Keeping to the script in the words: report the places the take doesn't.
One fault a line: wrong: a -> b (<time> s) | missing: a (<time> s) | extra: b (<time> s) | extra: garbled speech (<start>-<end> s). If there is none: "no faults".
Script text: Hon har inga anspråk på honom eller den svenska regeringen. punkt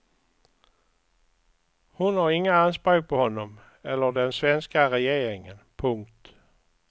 no faults